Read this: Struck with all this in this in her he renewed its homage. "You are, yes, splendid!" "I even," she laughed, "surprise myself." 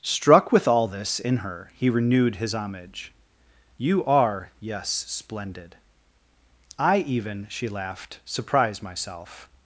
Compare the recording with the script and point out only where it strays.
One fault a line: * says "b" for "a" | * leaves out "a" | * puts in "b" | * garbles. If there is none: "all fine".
* leaves out "this in"
* says "his" for "its"